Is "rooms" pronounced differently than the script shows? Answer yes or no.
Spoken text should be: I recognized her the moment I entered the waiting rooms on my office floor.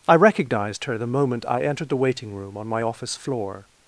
yes